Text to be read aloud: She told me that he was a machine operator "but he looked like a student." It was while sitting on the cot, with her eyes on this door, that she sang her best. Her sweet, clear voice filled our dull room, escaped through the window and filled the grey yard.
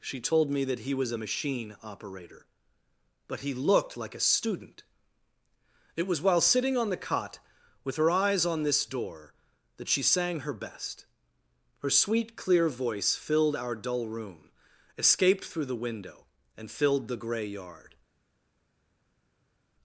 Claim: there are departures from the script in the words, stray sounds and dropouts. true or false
false